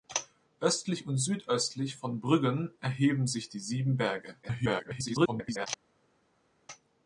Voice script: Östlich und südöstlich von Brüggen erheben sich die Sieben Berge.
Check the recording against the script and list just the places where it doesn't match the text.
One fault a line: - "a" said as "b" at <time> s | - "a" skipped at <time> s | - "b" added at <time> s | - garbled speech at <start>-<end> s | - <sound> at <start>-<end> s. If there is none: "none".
- garbled speech at 4.4-5.7 s